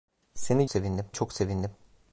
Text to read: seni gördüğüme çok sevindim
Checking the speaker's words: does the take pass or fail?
fail